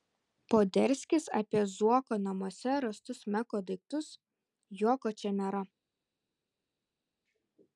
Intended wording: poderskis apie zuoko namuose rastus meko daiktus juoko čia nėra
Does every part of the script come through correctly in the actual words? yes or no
yes